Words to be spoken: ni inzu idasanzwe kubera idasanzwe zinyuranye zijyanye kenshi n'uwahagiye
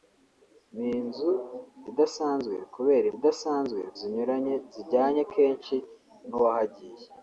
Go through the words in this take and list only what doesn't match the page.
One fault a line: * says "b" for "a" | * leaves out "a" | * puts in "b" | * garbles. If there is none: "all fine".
all fine